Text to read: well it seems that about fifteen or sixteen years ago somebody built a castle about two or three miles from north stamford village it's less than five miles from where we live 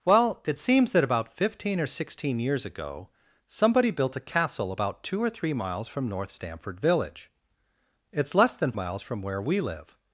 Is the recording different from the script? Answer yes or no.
yes